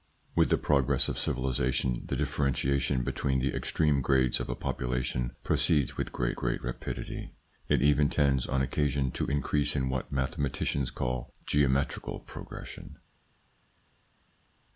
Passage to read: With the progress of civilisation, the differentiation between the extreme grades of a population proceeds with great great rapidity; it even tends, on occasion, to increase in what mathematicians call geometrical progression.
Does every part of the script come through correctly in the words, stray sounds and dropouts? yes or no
yes